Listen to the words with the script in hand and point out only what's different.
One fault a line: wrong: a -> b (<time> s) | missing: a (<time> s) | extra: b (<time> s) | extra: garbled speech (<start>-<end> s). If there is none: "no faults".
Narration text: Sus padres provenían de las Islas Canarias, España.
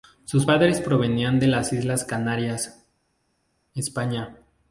no faults